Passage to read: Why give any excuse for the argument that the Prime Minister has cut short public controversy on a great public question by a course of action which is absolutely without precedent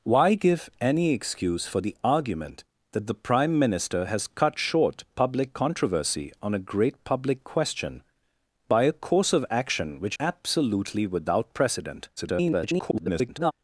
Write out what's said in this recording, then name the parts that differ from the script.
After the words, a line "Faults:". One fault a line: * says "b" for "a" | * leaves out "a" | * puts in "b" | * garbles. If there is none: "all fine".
Why give any excuse for the argument that the Prime Minister has cut short public controversy on a great public question by a course of action which absolutely without precedent [garbled]
Faults:
* leaves out "is"
* garbles